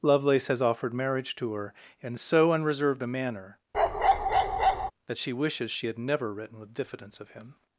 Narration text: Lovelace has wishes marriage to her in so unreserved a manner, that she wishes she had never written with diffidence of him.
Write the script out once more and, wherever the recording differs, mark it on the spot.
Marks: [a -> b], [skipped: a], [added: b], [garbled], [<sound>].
Lovelace has [wishes -> offered] marriage to her in so unreserved a manner, [bark] that she wishes she had never written with diffidence of him.